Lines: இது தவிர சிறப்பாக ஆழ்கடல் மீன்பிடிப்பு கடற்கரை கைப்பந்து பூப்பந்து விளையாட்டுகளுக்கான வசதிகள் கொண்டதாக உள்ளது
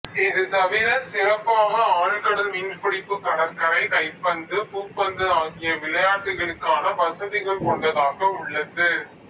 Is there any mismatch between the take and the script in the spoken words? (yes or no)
yes